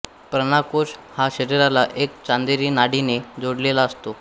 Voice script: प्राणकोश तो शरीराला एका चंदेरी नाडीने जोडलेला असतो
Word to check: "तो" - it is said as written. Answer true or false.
false